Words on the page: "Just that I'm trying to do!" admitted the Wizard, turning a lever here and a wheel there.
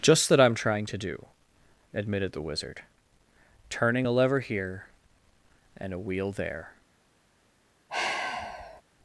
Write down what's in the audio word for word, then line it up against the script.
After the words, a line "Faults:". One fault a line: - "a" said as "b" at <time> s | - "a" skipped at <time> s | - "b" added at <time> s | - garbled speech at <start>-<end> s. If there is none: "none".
"Just that I'm trying to do!" admitted the Wizard, turning a lever here and a wheel there.
Faults:
none